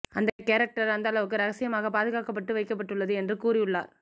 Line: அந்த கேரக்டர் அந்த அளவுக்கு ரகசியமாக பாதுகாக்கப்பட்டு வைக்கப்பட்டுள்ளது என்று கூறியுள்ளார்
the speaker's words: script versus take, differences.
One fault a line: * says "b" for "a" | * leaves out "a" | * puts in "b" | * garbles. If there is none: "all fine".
all fine